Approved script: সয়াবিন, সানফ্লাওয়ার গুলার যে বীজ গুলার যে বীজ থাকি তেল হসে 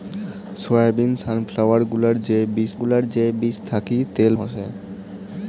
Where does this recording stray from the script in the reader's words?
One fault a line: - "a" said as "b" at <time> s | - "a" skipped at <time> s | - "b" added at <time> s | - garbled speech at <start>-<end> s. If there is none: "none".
none